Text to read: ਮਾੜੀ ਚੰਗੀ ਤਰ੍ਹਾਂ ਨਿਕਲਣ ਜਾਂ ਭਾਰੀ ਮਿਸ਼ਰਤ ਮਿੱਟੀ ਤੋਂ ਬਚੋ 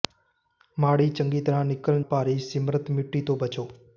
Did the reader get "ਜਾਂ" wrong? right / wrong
wrong